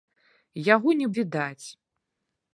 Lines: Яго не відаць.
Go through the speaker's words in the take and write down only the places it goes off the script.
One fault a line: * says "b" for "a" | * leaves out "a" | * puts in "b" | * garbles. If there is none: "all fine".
all fine